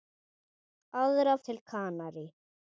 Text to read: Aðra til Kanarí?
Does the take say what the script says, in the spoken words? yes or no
yes